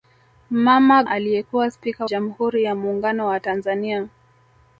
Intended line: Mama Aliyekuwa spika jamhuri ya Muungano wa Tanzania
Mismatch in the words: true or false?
false